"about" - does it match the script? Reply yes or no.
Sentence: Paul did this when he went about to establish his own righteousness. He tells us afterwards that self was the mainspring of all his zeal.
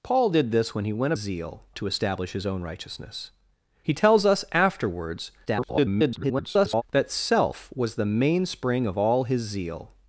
no